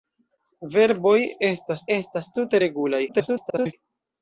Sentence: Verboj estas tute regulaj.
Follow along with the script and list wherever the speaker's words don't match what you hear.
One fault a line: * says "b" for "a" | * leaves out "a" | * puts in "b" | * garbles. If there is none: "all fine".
* puts in "estas"
* garbles